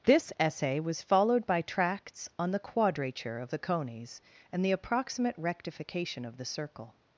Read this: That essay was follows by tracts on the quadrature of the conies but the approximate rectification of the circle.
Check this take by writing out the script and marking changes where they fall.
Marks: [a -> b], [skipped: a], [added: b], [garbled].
[That -> This] essay was [follows -> followed] by tracts on the quadrature of the conies [but -> and] the approximate rectification of the circle.